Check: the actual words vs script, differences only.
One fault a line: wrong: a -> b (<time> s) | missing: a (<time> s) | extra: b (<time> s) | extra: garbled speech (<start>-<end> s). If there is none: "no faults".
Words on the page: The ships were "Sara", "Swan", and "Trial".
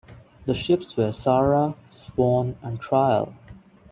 no faults